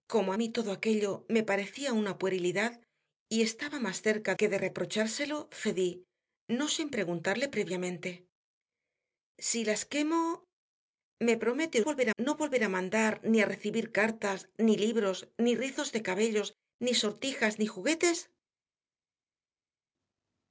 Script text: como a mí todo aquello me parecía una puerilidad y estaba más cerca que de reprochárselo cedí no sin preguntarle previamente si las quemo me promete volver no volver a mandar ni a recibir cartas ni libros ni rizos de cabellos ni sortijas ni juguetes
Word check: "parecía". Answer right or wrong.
right